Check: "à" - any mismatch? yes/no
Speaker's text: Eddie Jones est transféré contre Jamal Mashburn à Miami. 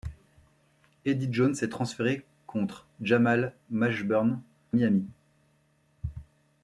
yes